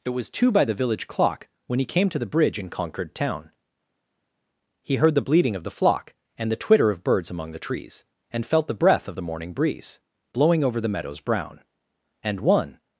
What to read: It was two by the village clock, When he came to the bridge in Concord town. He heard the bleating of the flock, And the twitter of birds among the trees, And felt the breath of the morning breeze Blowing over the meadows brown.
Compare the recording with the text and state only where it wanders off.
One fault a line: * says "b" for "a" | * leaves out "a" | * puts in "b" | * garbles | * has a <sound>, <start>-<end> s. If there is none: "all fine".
* puts in "And one"